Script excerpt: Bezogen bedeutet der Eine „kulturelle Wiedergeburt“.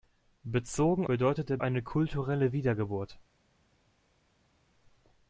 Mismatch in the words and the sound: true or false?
false